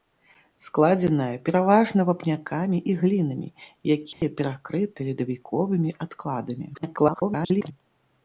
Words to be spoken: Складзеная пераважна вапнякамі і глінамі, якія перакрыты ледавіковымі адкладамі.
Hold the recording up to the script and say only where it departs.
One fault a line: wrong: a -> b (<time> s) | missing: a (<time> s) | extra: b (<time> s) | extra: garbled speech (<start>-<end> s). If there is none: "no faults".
extra: garbled speech (6.7-7.7 s)